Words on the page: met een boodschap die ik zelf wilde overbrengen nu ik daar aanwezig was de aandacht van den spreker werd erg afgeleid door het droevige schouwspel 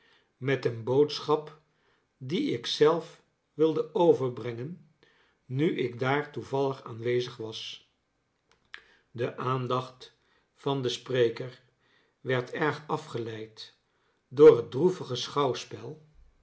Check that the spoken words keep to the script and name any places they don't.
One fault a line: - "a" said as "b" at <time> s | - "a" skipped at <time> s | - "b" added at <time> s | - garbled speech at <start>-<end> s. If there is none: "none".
- "toevallig" added at 6.3 s